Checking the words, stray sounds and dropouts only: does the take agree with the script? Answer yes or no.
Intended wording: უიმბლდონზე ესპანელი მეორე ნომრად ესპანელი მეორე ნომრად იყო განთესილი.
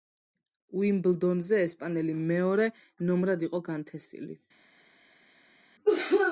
no